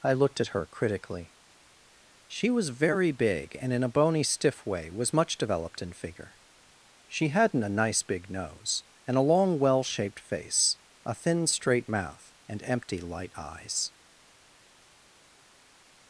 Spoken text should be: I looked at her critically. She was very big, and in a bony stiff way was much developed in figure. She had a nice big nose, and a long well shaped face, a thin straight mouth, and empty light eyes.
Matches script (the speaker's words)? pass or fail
fail